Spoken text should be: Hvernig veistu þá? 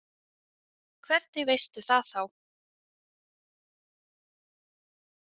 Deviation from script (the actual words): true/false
true